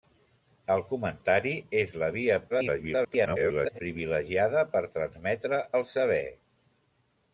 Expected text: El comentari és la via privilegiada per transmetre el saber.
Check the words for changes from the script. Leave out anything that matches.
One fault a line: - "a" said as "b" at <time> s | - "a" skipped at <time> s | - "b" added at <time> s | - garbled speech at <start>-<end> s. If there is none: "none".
- garbled speech at 2.5-3.8 s